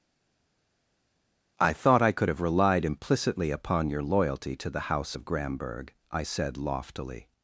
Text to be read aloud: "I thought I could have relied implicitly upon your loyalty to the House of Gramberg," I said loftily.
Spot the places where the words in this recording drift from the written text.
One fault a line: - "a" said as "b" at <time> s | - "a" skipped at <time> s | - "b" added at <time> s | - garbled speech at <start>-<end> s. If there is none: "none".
none